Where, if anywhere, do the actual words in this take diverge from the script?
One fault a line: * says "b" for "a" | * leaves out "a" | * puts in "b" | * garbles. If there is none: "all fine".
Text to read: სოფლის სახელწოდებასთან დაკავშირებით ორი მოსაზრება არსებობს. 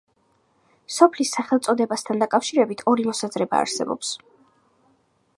all fine